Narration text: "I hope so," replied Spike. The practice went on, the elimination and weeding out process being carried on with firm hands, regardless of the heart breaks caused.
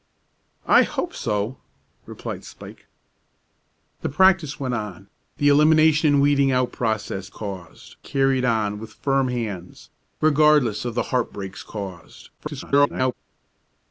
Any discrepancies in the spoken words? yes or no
yes